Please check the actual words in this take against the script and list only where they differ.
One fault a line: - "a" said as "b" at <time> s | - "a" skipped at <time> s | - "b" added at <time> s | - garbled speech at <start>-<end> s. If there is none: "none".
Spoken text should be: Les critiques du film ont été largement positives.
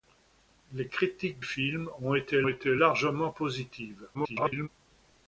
- "du" skipped at 1.4 s
- "été" added at 2.5 s
- garbled speech at 4.1-4.7 s